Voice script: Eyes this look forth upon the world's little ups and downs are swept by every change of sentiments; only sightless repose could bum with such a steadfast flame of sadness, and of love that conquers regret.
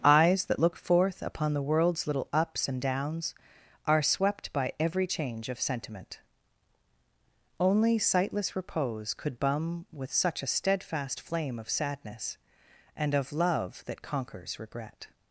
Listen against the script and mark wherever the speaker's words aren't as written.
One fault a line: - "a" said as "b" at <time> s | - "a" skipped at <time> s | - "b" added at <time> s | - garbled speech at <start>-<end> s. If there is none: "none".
- "this" said as "that" at 0.5 s
- "sentiments" said as "sentiment" at 5.6 s